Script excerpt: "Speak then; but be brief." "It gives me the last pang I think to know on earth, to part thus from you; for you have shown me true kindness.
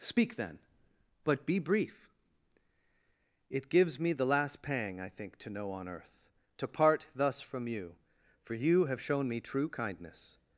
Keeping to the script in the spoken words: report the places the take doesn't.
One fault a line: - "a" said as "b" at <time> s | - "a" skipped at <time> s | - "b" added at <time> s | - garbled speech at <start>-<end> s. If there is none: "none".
none